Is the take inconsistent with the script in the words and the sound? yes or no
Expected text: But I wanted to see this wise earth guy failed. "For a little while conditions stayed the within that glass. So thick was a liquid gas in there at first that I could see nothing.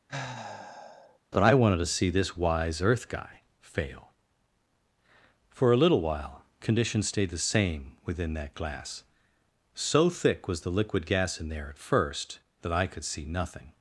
yes